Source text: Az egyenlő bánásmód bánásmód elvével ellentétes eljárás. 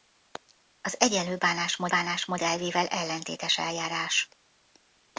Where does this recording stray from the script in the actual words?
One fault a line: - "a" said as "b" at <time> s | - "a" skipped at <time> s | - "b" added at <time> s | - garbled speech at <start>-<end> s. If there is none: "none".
none